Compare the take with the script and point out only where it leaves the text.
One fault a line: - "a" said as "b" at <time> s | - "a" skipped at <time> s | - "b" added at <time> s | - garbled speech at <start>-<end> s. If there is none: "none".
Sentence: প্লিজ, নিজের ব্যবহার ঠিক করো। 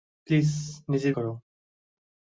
- "ব্যবহার ঠিক" skipped at 1.1 s